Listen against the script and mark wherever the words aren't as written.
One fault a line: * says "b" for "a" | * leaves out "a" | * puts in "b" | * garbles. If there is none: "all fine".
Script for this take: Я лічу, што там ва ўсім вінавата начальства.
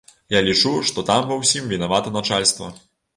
all fine